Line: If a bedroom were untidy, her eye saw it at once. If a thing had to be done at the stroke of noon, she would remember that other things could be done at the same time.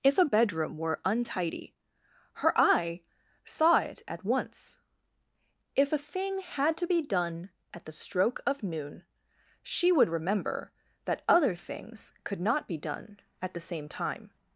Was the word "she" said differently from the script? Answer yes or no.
no